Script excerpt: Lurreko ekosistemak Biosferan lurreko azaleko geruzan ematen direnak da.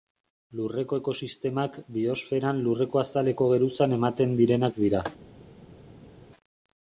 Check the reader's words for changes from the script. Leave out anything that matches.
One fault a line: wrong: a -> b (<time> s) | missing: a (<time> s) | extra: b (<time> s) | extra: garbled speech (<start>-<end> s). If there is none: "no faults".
wrong: da -> dira (4.9 s)